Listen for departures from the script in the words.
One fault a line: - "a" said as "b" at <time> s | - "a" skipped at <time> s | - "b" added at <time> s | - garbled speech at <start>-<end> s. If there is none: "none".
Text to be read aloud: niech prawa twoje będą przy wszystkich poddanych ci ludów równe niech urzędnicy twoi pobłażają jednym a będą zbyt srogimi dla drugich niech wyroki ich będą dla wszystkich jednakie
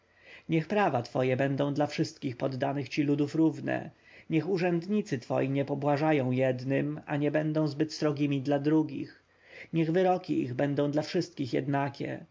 - "przy" said as "dla" at 1.7 s
- "nie" added at 5.5 s
- "nie" added at 7.2 s